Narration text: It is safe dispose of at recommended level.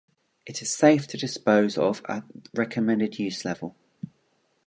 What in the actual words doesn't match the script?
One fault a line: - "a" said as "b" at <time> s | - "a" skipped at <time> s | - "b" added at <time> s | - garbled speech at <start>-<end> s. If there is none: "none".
- "to" added at 1.1 s
- "use" added at 3.2 s